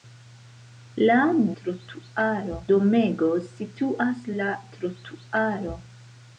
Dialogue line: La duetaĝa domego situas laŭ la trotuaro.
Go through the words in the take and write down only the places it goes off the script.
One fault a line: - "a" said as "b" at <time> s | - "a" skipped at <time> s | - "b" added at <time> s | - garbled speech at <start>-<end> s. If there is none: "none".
- "duetaĝa" said as "trotuaro" at 1.6 s
- "laŭ" skipped at 4.3 s